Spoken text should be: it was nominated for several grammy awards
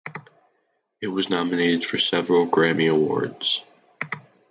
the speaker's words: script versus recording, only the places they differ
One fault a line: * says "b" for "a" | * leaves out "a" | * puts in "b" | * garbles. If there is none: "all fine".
all fine